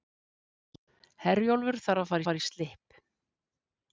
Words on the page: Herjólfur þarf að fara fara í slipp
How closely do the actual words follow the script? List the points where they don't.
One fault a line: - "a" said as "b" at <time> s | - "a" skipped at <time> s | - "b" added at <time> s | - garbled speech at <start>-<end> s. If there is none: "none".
none